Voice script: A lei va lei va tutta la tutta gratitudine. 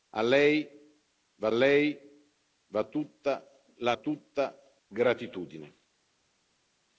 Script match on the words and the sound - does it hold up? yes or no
yes